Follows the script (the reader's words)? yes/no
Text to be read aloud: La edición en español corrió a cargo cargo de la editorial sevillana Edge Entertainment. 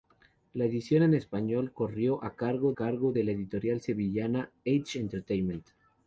yes